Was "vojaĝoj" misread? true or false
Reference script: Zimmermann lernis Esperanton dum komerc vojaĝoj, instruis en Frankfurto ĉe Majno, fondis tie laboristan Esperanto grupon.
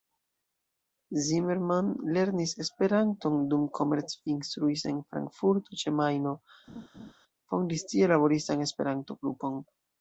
true